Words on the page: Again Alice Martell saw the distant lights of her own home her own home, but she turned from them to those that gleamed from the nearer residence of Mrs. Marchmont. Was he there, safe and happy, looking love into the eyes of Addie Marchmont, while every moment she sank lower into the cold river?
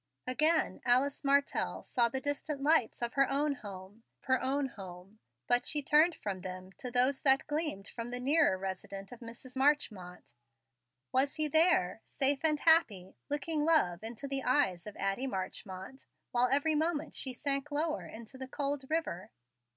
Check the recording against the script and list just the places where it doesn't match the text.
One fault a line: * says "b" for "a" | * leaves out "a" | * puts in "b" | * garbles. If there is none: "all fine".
all fine